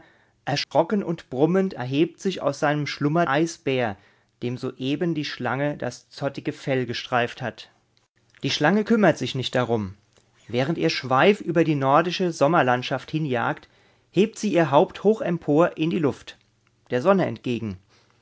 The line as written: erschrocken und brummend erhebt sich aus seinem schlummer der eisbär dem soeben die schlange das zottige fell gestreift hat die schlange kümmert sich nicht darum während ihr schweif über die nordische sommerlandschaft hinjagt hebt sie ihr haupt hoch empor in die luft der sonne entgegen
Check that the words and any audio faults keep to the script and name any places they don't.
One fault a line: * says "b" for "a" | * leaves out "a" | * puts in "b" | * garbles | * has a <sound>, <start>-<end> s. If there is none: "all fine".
* has a dropout, 0.6-0.7 s
* leaves out "der"